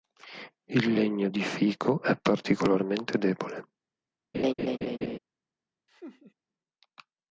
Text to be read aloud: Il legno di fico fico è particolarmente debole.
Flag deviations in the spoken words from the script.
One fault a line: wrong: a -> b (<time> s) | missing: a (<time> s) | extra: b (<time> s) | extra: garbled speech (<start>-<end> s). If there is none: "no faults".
missing: fico (2.0 s)